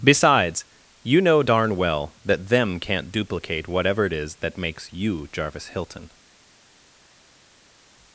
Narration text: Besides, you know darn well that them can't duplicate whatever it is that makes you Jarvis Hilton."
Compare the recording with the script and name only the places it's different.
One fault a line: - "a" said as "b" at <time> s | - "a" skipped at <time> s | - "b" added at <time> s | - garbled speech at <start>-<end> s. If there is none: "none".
none